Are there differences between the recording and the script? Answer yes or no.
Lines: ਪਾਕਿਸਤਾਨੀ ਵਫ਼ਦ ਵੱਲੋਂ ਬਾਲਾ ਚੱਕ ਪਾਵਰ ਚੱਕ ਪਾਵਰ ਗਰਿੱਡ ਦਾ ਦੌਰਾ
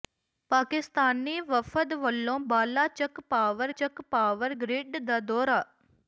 no